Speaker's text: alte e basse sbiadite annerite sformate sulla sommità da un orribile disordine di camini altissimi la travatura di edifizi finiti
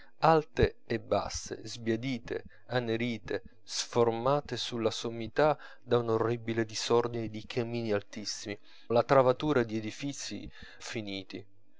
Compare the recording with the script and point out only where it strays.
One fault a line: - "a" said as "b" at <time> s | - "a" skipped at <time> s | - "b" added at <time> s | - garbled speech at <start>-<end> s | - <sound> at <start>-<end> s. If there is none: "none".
none